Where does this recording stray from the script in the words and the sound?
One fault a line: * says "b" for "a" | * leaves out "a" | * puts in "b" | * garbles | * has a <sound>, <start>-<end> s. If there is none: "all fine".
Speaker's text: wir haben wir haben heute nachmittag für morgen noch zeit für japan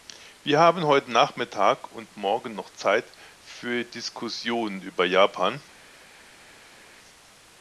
* leaves out "wir haben"
* says "und" for "für"
* puts in "diskussionen über"